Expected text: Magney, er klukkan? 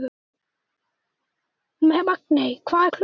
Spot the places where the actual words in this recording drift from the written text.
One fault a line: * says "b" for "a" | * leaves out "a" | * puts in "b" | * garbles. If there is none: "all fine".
* puts in "hvað"